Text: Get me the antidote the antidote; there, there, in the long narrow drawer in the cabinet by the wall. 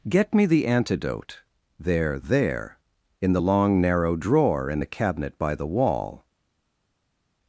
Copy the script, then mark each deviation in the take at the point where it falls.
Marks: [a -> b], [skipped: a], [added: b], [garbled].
Get me the antidote [skipped: the antidote;] there, there, in the long narrow drawer in the cabinet by the wall.